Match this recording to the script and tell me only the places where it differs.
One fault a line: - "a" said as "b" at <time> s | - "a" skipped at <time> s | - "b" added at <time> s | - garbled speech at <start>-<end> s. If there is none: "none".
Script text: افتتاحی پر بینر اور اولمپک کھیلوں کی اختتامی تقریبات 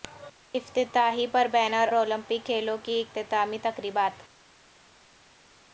- "اور" skipped at 1.9 s